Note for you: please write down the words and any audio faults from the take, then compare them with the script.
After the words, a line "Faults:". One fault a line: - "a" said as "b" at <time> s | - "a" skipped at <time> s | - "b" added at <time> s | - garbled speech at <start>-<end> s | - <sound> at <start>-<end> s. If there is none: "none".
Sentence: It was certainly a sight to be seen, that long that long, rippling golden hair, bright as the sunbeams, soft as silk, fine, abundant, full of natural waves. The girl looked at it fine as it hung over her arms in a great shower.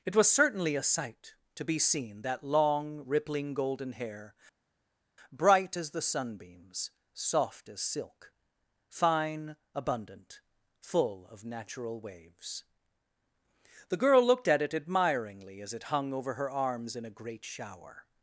It was certainly a sight to be seen, that long, rippling golden hair, bright as the sunbeams, soft as silk, fine, abundant, full of natural waves. The girl looked at it admiringly as it hung over her arms in a great shower.
Faults:
- "that long" skipped at 3.0 s
- "fine" said as "admiringly" at 14.7 s